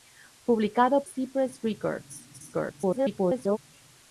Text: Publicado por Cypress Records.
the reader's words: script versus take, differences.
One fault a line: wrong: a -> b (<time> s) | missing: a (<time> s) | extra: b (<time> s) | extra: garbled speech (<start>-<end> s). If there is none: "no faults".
missing: por (1.0 s)
extra: garbled speech (2.3-3.6 s)